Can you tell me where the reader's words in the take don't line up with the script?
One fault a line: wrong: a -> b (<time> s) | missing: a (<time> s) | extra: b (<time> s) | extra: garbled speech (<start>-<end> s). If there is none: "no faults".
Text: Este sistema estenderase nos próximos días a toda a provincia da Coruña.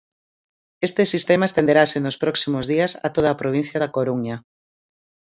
no faults